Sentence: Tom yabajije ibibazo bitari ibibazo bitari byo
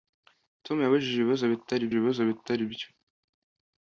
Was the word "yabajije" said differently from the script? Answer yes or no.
no